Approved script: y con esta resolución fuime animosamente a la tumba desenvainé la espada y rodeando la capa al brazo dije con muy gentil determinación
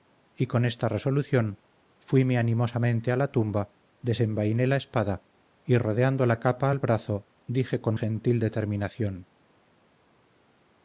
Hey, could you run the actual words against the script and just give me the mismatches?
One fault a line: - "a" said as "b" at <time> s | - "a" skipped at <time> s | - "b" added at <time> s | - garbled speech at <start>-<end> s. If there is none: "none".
- "muy" skipped at 8.0 s